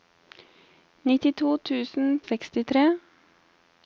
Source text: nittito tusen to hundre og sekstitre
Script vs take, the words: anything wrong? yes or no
yes